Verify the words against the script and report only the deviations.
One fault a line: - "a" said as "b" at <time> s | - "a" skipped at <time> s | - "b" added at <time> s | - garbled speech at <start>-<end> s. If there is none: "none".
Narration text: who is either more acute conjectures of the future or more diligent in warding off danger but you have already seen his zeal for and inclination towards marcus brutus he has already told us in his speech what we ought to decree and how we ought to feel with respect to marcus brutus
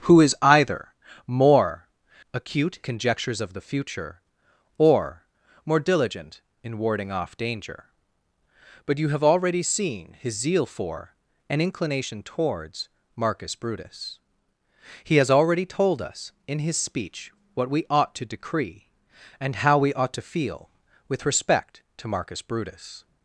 none